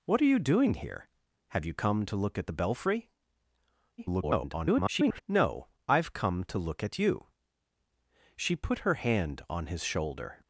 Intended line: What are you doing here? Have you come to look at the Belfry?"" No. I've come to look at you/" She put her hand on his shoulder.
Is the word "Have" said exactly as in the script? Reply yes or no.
yes